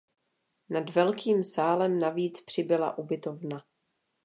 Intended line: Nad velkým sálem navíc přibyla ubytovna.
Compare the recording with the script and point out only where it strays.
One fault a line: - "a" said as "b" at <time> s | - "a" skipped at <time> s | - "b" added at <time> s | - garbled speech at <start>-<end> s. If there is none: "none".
none